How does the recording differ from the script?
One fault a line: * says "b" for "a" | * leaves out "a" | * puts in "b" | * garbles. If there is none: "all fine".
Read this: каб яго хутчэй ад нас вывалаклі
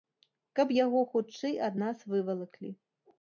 all fine